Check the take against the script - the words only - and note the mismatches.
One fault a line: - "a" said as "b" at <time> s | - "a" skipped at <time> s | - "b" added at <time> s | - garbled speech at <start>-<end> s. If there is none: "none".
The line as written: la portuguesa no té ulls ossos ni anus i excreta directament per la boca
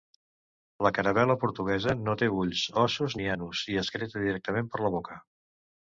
- "caravel·la" added at 1.0 s